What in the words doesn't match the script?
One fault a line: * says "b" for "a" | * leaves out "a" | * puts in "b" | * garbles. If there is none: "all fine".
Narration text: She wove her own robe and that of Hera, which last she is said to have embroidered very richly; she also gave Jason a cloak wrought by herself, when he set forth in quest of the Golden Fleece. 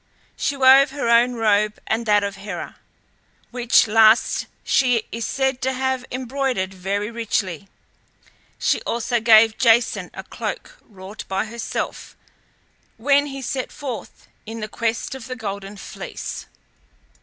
all fine